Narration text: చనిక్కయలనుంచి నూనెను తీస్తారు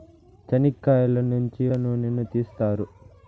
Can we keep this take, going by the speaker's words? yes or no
yes